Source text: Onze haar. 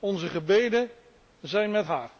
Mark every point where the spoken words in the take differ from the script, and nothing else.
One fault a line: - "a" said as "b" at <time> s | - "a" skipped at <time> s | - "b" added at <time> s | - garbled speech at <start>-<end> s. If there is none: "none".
- "gebeden zijn met" added at 0.3 s